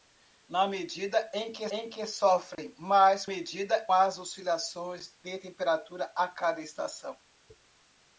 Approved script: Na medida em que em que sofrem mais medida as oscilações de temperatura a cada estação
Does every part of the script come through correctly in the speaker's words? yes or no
yes